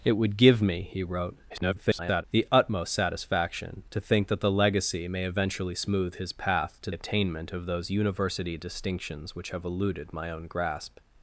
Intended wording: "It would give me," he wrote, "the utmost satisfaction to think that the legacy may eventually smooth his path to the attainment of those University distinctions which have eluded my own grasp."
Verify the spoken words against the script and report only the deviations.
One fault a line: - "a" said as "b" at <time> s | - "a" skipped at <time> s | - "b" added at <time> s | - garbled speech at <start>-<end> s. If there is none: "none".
- garbled speech at 1.5-2.2 s
- "the" skipped at 6.9 s